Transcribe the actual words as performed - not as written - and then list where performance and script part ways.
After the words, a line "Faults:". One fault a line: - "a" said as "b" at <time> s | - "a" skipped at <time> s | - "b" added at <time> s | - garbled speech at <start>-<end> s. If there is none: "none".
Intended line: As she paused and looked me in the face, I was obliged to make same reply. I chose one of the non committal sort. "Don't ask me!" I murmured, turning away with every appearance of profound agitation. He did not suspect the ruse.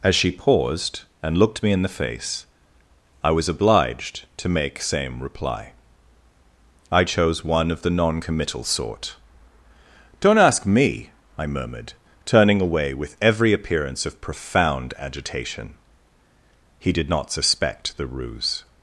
As she paused and looked me in the face, I was obliged to make same reply. I chose one of the non committal sort. "Don't ask me!" I murmured, turning away with every appearance of profound agitation. He did not suspect the ruse.
Faults:
none